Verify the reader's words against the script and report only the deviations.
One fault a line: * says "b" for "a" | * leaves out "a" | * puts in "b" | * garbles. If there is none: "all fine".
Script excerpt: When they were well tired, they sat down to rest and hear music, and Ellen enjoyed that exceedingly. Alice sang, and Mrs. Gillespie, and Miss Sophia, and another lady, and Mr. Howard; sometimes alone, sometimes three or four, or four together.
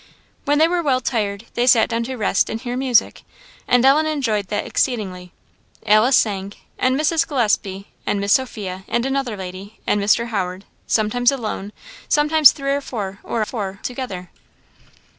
all fine